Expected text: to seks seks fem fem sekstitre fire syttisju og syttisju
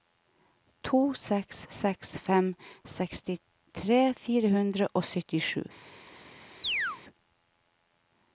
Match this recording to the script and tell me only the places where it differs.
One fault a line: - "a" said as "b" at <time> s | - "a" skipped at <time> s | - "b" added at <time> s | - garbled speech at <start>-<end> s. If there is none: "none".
- "fem" skipped at 2.5 s
- "syttisju" said as "hundre" at 4.6 s